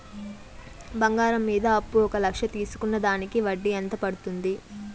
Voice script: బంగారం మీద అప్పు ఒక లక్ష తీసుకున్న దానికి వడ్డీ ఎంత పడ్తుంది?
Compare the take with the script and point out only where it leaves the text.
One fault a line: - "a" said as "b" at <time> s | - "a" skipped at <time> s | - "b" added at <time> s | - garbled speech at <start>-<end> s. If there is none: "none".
none